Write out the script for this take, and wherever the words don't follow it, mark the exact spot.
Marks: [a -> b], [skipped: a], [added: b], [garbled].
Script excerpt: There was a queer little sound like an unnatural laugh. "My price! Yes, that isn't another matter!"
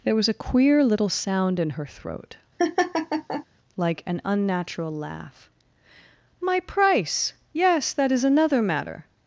There was a queer little sound [added: in her throat] like an unnatural laugh. "My price! Yes, that [isn't -> is] another matter!"